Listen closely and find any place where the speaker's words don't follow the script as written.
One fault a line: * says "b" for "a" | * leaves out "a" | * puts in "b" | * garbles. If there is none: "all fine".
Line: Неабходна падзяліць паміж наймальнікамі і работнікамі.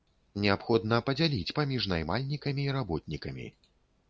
all fine